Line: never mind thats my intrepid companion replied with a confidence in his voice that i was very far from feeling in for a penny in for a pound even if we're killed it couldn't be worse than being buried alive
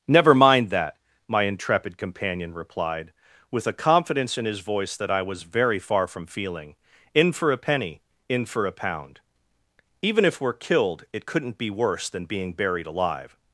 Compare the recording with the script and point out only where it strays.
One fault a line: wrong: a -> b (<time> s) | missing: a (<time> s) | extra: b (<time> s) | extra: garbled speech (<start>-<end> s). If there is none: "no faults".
wrong: thats -> that (0.7 s)